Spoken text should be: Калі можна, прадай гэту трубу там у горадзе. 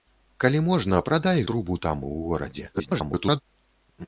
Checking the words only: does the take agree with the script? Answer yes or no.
no